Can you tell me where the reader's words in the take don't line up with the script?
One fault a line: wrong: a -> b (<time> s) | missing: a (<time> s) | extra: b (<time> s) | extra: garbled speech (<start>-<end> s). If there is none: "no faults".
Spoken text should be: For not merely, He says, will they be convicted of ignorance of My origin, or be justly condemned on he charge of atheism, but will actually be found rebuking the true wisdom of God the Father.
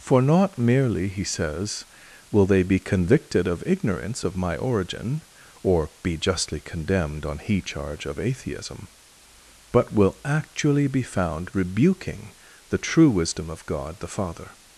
no faults